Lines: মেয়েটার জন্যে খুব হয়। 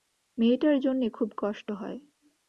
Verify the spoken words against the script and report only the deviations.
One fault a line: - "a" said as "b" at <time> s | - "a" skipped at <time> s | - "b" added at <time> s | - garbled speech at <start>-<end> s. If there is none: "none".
- "কষ্ট" added at 1.4 s